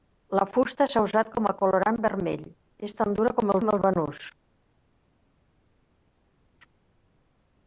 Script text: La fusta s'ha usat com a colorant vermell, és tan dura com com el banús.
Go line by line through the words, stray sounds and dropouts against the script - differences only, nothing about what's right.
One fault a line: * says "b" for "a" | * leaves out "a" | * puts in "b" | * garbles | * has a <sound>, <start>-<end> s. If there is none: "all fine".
all fine